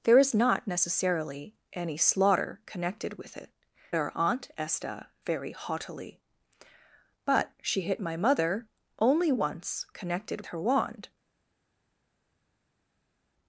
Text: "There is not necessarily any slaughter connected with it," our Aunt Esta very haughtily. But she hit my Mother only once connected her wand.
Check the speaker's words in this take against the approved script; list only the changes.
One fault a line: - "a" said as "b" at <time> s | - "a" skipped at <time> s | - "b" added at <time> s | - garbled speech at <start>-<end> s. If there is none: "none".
none